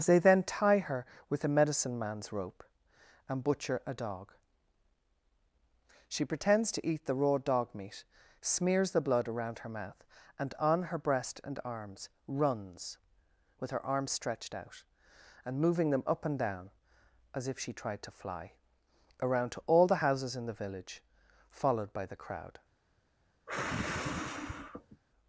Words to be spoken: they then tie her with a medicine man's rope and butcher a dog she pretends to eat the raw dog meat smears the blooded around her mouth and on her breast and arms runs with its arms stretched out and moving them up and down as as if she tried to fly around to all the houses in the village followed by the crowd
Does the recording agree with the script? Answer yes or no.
no